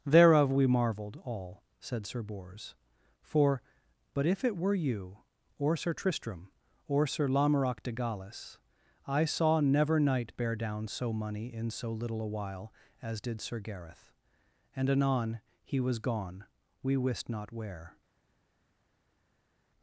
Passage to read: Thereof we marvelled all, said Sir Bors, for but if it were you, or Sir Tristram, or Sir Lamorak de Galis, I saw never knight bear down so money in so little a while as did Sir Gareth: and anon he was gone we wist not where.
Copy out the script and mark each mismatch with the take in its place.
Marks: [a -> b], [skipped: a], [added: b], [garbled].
Thereof we marvelled all, said Sir Bors, for but if it were you, or Sir Tristram, or Sir Lamorak de Galis, I saw never knight bear down so money in so little a while as did Sir Gareth: and anon he was gone we wist not where.